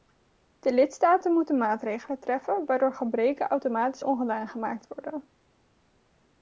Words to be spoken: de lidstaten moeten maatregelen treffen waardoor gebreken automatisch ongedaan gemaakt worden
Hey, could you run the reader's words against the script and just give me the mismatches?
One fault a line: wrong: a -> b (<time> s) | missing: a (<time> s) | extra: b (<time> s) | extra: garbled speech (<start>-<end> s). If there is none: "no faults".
no faults